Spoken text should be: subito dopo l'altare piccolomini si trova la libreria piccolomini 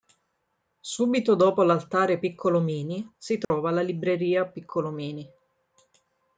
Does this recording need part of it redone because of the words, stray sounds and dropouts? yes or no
yes